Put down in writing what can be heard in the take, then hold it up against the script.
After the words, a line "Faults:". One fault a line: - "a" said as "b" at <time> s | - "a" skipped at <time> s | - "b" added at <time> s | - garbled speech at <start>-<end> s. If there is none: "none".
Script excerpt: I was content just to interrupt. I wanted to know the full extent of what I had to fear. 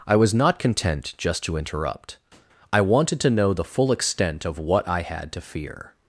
I was not content just to interrupt. I wanted to know the full extent of what I had to fear.
Faults:
- "not" added at 0.3 s